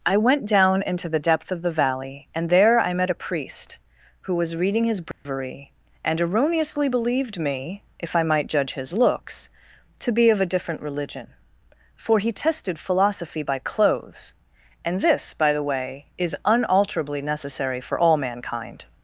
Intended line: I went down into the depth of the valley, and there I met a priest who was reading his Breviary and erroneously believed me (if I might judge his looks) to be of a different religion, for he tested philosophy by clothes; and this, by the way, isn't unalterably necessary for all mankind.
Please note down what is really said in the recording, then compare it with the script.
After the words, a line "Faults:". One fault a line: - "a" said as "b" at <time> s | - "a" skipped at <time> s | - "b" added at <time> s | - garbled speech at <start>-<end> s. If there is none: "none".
I went down into the depth of the valley, and there I met a priest who was reading his Breviary and erroneously believed me (if I might judge his looks) to be of a different religion, for he tested philosophy by clothes; and this, by the way, is unalterably necessary for all mankind.
Faults:
- "isn't" said as "is" at 16.2 s